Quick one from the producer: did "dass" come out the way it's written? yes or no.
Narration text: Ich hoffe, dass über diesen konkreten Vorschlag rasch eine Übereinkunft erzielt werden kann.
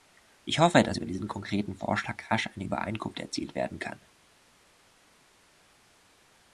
yes